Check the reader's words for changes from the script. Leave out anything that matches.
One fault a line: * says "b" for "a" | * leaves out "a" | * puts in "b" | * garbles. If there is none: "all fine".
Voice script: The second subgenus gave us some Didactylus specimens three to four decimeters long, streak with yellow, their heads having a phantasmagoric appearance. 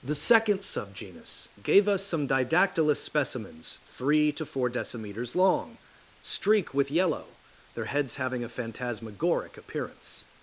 all fine